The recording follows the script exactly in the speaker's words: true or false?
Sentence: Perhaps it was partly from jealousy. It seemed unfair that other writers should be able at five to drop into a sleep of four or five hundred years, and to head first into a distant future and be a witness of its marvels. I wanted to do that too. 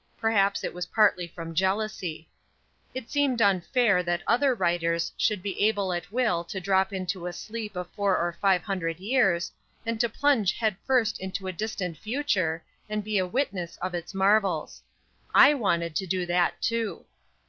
false